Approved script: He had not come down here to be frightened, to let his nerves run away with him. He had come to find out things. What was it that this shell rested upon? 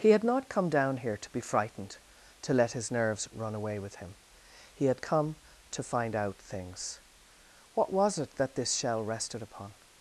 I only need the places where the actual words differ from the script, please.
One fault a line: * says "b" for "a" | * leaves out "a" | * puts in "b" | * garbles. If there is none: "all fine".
all fine